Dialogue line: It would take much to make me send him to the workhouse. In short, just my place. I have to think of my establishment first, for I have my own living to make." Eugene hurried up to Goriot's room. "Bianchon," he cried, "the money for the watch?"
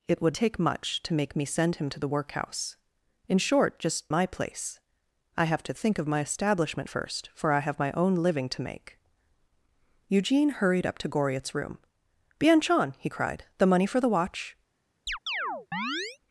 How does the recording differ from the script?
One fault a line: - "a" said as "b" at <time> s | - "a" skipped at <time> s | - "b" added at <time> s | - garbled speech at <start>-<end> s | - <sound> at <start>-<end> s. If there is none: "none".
- chirp at 15.1-16.2 s